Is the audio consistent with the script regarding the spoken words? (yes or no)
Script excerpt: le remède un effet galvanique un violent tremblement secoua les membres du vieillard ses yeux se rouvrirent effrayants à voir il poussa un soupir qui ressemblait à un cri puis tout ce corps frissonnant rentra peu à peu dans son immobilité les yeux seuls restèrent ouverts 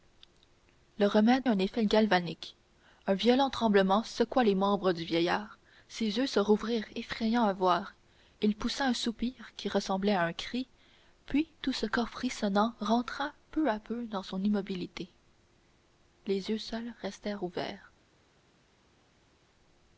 yes